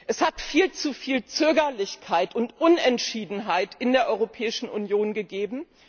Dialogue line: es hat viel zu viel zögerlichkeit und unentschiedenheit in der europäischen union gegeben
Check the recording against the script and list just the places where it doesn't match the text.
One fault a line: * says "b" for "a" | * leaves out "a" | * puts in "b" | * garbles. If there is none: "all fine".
all fine